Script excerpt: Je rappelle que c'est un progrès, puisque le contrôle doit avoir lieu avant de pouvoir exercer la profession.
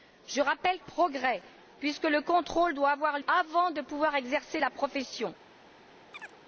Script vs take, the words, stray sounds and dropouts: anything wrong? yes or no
yes